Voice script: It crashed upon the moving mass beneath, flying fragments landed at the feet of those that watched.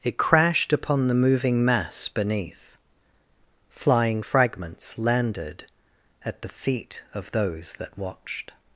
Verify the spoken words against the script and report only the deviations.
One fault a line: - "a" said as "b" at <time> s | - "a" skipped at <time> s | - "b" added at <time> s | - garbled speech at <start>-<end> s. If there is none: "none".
none